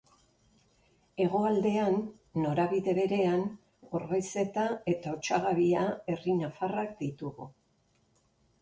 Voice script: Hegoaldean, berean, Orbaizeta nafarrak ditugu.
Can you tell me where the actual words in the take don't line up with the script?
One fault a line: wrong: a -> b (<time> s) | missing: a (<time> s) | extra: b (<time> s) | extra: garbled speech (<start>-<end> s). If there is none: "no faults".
extra: norabide (2.4 s)
extra: eta Otsagabia herri (5.0 s)